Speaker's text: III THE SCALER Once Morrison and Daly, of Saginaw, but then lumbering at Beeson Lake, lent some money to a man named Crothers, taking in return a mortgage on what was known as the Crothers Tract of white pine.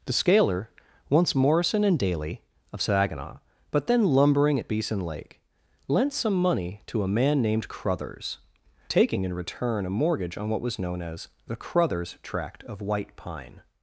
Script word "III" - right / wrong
wrong